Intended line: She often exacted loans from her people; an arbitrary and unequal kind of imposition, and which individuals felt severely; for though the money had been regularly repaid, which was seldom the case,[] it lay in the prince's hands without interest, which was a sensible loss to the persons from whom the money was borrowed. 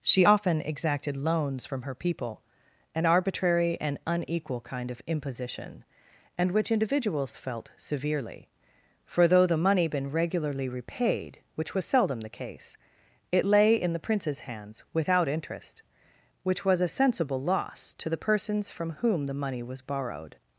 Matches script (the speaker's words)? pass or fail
fail